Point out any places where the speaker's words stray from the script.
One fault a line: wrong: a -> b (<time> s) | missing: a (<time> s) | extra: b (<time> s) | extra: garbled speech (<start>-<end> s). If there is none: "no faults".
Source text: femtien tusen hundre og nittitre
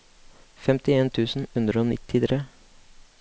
no faults